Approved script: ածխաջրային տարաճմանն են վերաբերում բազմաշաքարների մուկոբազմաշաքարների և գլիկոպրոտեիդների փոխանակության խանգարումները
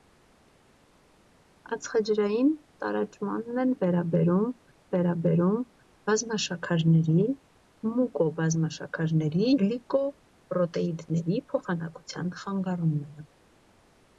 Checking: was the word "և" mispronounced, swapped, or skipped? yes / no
yes